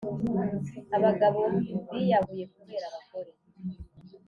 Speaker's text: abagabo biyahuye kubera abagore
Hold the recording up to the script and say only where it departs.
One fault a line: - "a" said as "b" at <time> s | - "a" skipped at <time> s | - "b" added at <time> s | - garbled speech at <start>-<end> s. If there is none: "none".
none